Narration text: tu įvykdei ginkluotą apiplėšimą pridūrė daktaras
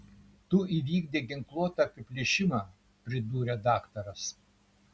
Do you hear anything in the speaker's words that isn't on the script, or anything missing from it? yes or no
no